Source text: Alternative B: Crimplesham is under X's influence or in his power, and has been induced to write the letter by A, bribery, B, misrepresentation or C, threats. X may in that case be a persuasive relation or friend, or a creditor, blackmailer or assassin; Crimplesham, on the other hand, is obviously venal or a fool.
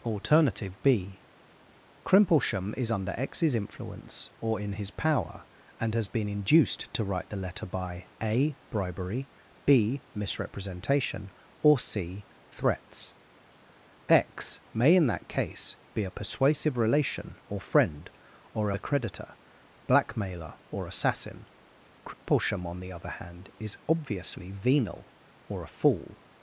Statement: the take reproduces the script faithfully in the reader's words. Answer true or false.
true